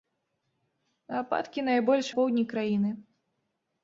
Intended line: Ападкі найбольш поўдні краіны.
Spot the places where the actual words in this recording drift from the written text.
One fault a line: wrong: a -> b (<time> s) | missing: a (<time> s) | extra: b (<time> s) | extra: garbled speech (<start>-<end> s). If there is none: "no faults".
no faults